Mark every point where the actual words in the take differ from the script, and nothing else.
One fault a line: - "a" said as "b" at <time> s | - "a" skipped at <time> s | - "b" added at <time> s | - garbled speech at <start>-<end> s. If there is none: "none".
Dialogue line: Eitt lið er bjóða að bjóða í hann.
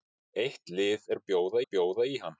none